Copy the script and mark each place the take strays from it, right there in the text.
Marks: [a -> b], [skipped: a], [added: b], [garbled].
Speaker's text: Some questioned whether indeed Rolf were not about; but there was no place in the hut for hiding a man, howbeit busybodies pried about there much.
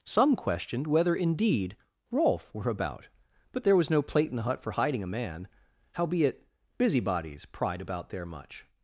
Some questioned whether indeed Rolf were [skipped: not] about; but there was no [place -> plate] in the hut for hiding a man, howbeit busybodies pried about there much.